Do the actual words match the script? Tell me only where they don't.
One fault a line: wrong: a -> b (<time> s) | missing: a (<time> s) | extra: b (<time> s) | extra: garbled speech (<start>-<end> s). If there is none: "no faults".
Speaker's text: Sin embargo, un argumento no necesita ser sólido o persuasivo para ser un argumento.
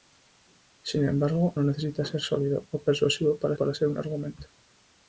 missing: un argumento (1.5 s)
extra: para (3.5 s)